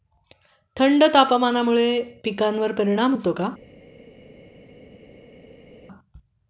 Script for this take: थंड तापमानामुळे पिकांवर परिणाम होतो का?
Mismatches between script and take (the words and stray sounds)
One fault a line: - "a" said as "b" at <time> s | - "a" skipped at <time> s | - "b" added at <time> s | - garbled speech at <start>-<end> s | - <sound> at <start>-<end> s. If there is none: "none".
none